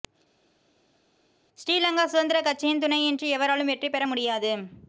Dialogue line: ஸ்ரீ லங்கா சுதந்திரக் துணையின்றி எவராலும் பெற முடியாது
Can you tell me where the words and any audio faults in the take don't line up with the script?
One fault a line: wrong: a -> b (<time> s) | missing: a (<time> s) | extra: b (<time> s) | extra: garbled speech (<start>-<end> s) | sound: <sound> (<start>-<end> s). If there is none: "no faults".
extra: கட்சியின் (2.5 s)
extra: வெற்றி (3.7 s)